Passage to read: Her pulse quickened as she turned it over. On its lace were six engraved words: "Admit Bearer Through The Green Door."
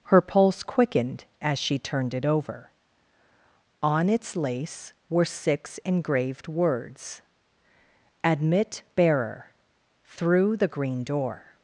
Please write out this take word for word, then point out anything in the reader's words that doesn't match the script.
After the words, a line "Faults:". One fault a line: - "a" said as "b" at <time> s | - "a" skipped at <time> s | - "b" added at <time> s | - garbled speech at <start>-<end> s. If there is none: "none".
Her pulse quickened as she turned it over. On its lace were six engraved words: "Admit Bearer Through The Green Door."
Faults:
none